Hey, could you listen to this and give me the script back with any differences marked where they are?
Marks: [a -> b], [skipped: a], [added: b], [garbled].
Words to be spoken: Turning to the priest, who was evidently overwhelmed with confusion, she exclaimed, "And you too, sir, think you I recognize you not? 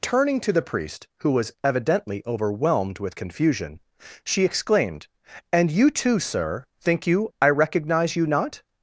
Turning to the priest, who was evidently overwhelmed with confusion, she exclaimed, "And you too, sir, think you I recognize you not?